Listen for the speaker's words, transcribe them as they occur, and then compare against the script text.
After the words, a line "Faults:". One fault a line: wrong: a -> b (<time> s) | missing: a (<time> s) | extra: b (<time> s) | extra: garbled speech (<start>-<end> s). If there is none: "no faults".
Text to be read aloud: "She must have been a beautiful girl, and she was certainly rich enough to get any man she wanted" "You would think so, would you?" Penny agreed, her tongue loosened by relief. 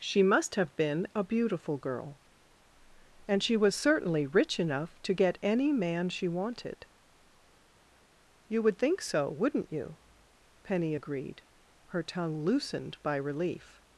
"She must have been a beautiful girl, and she was certainly rich enough to get any man she wanted" "You would think so, wouldn't you?" Penny agreed, her tongue loosened by relief.
Faults:
wrong: would -> wouldn't (9.3 s)